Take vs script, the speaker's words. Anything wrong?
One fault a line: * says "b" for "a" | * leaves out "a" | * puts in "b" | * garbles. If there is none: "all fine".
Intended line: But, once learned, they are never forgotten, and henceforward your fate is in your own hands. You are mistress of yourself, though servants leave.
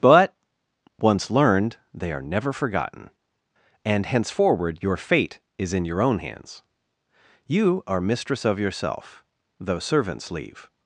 all fine